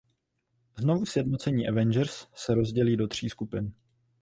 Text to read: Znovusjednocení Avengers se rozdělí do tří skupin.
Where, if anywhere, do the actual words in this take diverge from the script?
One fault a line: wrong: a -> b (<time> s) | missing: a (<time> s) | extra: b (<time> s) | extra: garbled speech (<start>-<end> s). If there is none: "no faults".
no faults